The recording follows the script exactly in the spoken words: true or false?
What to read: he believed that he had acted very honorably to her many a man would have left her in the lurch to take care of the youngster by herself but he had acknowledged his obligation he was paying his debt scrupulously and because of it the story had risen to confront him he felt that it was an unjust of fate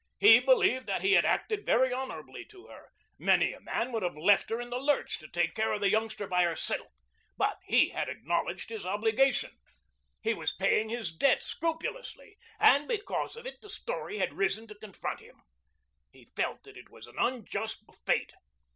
true